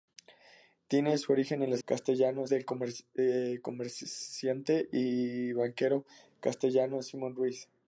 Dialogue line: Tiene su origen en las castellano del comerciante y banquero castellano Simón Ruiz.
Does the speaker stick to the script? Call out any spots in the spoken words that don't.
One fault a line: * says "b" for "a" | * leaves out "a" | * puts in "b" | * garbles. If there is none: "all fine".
all fine